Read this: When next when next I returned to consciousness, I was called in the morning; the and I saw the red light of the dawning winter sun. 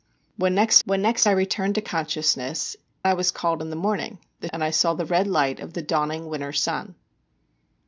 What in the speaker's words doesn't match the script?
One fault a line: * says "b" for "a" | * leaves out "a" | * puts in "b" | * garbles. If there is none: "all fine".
all fine